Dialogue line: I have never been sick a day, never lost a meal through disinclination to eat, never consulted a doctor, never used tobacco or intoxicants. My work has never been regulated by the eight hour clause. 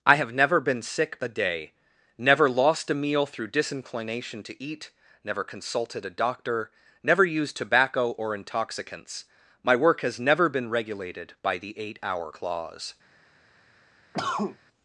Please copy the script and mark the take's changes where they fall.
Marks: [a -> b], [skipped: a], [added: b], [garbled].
I have never been sick a day, never lost a meal through disinclination to eat, never consulted a doctor, never used tobacco or intoxicants. My work has never been regulated by the eight hour clause.